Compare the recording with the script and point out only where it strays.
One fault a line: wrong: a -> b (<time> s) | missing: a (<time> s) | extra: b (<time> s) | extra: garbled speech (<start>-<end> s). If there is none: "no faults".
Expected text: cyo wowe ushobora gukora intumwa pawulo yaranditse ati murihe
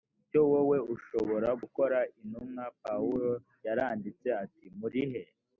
no faults